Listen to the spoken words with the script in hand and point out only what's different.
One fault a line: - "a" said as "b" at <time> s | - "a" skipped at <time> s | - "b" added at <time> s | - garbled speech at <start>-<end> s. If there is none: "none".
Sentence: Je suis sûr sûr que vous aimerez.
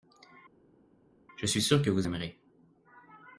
- "sûr" skipped at 1.8 s